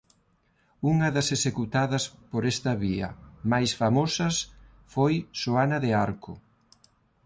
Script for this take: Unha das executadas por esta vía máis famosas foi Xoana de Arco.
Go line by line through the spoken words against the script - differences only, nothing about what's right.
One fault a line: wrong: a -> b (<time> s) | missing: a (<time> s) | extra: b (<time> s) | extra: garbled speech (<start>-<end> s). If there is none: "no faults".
no faults